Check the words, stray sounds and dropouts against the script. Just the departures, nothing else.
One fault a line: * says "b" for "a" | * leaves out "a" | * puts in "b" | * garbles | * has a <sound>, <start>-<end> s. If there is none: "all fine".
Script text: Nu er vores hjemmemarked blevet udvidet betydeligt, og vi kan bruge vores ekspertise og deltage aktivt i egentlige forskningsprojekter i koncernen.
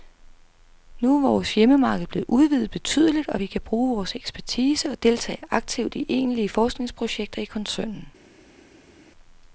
all fine